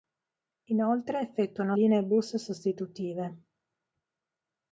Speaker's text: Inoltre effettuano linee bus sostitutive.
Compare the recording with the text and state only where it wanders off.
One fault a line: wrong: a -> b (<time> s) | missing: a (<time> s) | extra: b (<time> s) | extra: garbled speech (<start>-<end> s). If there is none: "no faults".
no faults